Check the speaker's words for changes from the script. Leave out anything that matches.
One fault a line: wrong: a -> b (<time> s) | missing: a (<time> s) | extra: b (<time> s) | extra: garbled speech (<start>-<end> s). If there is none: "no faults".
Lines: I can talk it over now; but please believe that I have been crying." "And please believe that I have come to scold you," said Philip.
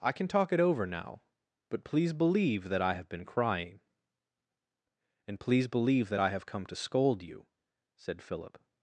no faults